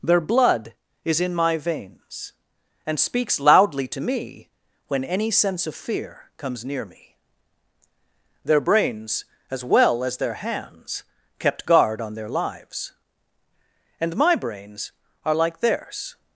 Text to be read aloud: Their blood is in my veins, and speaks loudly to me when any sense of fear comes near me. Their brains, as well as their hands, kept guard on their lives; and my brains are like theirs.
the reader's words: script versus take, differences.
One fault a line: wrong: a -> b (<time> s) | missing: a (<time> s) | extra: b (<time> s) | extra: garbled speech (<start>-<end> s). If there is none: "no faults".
no faults